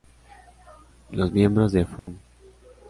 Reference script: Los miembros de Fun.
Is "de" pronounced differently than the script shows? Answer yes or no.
no